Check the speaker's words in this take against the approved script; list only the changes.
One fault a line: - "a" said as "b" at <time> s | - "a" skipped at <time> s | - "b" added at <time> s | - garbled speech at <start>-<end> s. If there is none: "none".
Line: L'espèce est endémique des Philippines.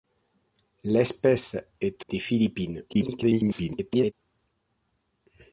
- "endémique" skipped at 2.0 s
- garbled speech at 2.9-4.1 s